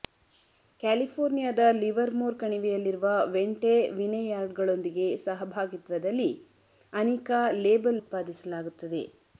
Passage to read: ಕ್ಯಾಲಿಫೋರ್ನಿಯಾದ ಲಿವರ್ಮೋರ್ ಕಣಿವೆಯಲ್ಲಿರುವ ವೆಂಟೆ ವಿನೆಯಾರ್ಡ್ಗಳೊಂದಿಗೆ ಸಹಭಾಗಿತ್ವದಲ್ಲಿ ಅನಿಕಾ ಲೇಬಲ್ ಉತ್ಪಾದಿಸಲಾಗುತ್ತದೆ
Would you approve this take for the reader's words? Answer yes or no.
yes